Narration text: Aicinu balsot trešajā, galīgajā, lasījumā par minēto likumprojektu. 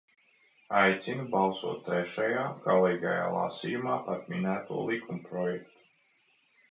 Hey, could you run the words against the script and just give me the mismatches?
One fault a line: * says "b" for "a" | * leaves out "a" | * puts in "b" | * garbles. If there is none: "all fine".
all fine